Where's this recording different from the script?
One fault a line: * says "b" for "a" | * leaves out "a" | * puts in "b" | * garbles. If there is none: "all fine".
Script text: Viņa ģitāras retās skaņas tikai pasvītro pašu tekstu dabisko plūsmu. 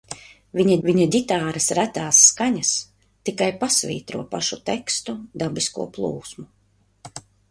* puts in "viņa"